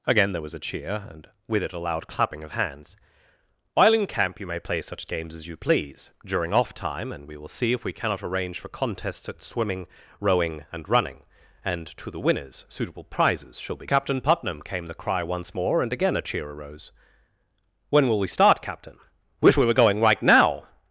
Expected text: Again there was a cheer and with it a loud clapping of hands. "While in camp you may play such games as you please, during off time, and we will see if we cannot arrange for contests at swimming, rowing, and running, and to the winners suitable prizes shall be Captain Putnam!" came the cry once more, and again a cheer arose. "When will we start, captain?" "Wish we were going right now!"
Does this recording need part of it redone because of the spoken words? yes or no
no